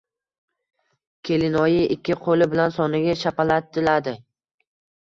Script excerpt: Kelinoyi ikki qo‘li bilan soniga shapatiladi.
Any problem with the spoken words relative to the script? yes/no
no